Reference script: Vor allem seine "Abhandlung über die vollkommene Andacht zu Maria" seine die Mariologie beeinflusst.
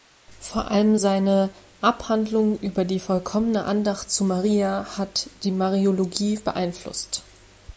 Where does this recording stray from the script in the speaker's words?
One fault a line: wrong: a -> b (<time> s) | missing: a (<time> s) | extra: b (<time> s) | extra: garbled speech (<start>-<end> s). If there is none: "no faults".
wrong: seine -> hat (5.0 s)